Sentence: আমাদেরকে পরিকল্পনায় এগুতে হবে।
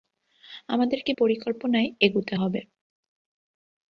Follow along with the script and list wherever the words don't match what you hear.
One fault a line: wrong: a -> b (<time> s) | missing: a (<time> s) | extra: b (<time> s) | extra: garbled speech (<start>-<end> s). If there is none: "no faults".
no faults